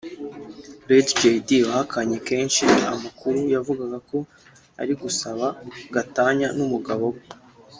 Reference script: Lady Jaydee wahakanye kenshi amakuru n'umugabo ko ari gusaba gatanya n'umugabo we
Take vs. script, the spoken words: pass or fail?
fail